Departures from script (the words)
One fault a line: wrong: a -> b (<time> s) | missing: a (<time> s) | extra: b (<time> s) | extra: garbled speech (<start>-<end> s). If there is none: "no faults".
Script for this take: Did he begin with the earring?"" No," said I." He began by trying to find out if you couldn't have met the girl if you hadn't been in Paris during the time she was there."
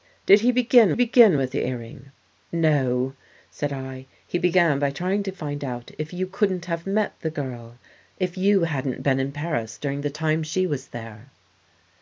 extra: begin (0.9 s)